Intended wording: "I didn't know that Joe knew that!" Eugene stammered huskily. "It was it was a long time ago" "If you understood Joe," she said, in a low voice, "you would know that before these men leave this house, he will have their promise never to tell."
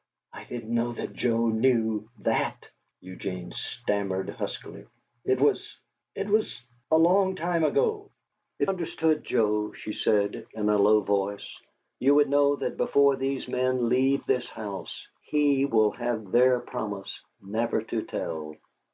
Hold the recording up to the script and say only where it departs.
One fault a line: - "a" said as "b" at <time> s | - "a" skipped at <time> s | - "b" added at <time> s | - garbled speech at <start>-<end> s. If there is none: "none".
- "you" skipped at 8.7 s